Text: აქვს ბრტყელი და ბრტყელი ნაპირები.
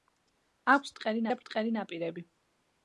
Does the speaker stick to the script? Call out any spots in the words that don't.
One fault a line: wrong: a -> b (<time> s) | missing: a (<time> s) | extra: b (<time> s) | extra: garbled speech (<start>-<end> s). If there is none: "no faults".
no faults